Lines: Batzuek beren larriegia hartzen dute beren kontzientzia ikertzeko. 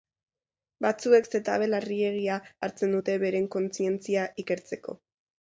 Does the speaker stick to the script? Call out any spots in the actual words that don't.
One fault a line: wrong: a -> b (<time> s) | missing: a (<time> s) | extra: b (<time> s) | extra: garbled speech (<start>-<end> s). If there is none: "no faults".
wrong: beren -> zetabe (1.4 s)